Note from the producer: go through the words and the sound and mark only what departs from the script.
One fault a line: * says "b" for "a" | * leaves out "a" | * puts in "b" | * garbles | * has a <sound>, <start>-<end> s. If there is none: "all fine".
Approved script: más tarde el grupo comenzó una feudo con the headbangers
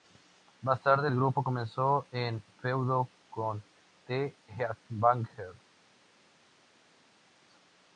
* says "un" for "una"